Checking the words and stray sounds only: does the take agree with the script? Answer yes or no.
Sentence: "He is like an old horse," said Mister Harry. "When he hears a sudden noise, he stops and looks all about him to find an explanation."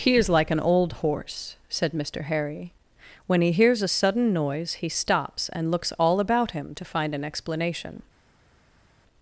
yes